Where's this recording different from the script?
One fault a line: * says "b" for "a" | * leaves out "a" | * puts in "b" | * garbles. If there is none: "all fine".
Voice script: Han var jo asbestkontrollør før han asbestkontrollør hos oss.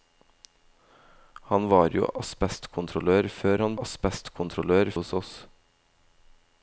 all fine